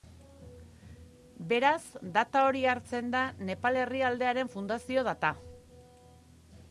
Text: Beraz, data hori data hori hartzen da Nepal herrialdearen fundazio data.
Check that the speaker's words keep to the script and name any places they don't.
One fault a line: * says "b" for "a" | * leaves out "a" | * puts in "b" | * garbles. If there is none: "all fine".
* leaves out "data hori"